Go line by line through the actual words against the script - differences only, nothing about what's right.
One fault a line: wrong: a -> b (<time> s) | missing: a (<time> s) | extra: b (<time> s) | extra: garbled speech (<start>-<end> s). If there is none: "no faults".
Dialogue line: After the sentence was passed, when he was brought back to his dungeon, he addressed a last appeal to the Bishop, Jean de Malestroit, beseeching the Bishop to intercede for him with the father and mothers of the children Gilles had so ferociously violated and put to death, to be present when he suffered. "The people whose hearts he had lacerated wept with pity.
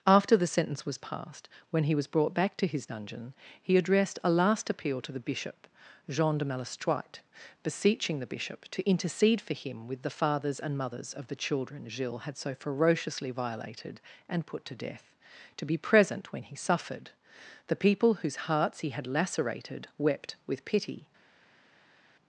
wrong: father -> fathers (10.1 s)